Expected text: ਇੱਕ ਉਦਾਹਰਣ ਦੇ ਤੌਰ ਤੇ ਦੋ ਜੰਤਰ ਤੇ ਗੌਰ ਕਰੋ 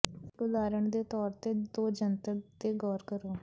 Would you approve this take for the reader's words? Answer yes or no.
yes